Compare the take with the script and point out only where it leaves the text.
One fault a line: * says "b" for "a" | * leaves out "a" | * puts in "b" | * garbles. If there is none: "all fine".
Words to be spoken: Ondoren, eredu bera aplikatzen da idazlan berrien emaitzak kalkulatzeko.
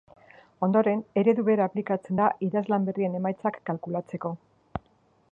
all fine